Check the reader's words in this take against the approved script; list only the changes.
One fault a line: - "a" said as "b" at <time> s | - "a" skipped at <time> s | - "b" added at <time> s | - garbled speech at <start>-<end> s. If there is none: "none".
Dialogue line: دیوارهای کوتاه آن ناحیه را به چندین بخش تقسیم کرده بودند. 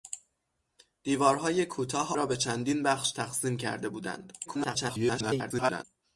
- "آن ناحیه" skipped at 2.1 s
- garbled speech at 4.5-5.8 s